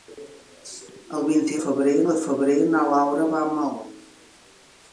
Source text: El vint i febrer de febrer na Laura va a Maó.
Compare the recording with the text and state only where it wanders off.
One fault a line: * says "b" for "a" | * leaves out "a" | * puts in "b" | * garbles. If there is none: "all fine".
all fine